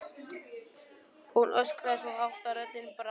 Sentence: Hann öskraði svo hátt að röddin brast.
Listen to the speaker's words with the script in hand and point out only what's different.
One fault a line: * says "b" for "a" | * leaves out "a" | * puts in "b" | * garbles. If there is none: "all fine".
* says "Hún" for "Hann"